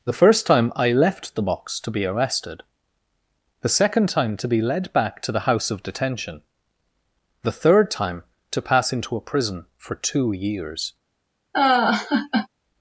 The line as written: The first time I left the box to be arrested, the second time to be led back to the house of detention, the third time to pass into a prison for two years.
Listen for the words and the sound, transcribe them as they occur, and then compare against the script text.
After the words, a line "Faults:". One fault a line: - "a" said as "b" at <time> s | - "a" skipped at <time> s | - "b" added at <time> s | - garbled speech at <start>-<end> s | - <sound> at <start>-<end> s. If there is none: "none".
The first time I left the box to be arrested, the second time to be led back to the house of detention, the third time to pass into a prison for two years.
Faults:
- laugh at 11.5-12.5 s